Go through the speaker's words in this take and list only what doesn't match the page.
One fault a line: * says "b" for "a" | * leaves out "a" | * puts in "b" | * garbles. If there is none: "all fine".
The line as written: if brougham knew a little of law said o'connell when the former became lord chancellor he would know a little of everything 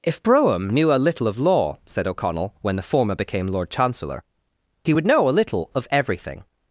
all fine